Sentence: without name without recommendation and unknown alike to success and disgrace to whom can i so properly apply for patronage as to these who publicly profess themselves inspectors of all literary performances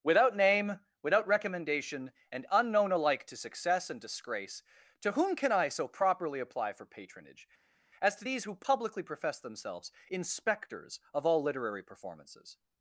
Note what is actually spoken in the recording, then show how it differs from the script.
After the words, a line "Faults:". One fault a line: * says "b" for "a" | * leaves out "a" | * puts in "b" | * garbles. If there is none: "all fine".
without name without recommendation and unknown alike to success and disgrace to whom can i so properly apply for patronage as to these who publicly profess themselves inspectors of all literary performances
Faults:
all fine